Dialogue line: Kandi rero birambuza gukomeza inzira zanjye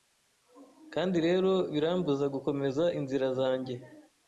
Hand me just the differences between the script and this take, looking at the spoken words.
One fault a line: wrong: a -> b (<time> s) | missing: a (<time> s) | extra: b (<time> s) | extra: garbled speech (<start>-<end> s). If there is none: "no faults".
no faults